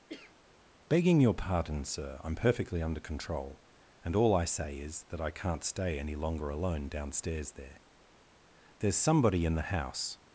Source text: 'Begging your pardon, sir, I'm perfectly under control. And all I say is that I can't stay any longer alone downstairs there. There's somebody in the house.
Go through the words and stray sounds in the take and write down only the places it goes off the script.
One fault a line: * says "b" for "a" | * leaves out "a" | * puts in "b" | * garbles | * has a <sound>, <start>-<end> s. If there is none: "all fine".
* has a cough, 0.1-0.4 s